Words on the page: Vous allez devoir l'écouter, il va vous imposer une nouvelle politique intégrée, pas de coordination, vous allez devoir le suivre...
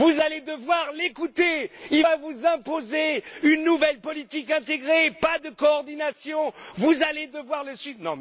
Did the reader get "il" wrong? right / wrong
right